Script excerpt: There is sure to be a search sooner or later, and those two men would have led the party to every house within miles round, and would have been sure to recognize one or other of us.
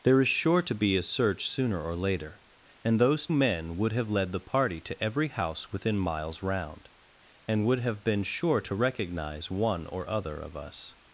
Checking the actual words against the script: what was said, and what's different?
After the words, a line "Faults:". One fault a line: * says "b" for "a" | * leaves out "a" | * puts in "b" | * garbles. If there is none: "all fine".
There is sure to be a search sooner or later, and those men would have led the party to every house within miles round, and would have been sure to recognize one or other of us.
Faults:
* leaves out "two"